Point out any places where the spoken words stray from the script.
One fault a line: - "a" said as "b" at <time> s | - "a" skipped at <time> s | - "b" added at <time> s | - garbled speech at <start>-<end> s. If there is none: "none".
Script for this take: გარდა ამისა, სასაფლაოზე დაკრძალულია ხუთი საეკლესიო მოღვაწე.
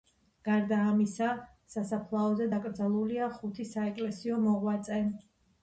none